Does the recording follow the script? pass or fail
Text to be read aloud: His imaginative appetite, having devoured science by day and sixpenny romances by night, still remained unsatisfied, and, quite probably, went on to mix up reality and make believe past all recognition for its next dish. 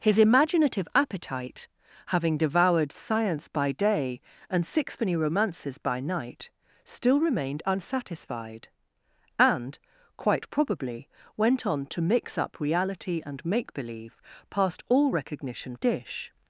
fail